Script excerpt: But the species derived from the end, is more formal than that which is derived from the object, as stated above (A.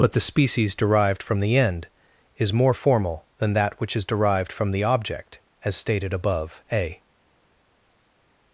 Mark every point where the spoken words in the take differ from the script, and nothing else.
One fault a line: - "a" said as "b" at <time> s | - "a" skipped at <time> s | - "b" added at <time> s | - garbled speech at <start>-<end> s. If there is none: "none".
none